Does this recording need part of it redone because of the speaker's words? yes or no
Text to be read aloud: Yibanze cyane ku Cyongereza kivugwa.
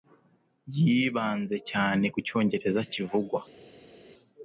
no